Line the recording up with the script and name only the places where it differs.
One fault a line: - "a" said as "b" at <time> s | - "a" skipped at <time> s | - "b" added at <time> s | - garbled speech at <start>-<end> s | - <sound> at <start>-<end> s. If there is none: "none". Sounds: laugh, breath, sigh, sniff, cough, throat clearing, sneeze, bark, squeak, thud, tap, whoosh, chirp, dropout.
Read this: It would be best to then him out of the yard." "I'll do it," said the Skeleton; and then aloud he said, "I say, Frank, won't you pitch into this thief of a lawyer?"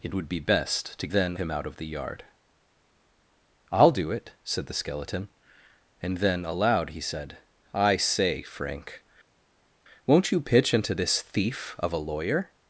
none